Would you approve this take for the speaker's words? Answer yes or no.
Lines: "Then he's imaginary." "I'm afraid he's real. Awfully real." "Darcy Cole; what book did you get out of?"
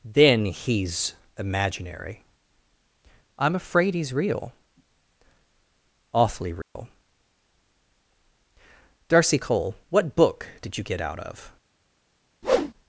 yes